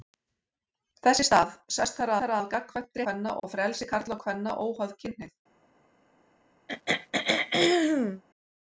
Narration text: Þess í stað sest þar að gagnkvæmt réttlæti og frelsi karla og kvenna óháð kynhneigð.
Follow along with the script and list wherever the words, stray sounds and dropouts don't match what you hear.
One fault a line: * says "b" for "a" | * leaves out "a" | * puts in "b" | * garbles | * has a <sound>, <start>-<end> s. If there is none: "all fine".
* puts in "þar"
* says "kvenna" for "réttlæti"
* has a throat clearing, 6.7-8.2 s